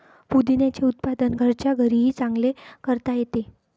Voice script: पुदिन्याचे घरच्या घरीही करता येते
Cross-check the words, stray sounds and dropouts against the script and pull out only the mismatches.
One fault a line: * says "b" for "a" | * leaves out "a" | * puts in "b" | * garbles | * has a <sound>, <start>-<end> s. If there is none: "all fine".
* puts in "उत्पादन"
* puts in "चांगले"